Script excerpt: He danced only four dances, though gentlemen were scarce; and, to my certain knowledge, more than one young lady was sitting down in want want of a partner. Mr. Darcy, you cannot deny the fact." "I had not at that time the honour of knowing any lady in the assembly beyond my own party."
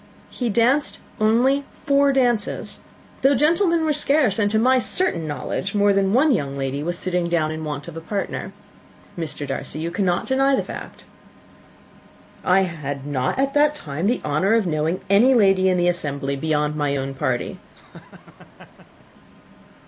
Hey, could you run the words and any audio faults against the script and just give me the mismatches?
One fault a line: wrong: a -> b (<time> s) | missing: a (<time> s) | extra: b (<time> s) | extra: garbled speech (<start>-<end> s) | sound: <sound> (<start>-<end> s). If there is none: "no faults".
missing: want (7.9 s)
sound: laugh (17.7-19.1 s)